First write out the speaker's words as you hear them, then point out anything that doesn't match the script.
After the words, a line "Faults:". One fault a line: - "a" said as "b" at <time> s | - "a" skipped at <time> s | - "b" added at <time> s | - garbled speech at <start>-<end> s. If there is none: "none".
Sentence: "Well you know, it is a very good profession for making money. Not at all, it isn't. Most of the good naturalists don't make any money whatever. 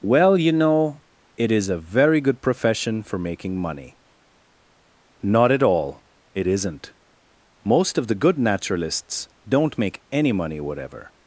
"Well you know, it is a very good profession for making money. Not at all, it isn't. Most of the good naturalists don't make any money whatever.
Faults:
none